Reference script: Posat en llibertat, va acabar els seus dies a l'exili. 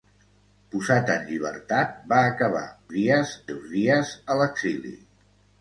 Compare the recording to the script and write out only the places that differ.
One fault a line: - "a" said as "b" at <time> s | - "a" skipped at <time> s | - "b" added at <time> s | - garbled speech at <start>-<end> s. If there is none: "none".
- "els" said as "dies" at 3.0 s